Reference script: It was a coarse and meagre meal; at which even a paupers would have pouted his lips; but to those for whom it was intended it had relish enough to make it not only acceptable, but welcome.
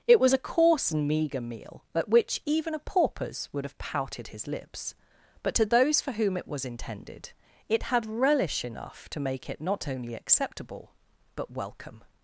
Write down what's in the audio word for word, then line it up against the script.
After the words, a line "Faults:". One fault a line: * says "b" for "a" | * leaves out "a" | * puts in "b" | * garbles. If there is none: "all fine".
It was a coarse and meagre meal; at which even a paupers would have pouted his lips; but to those for whom it was intended it had relish enough to make it not only acceptable, but welcome.
Faults:
all fine